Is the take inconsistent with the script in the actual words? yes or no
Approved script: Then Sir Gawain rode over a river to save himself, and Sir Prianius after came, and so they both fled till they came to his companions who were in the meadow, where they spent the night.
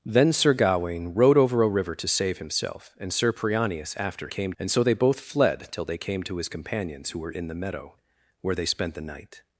no